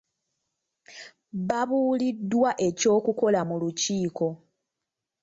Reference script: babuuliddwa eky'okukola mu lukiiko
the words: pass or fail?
pass